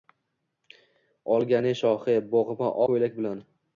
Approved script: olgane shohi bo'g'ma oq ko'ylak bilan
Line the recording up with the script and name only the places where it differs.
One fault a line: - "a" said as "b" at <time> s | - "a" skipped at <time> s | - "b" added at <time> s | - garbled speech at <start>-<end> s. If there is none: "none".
- "oq" skipped at 2.7 s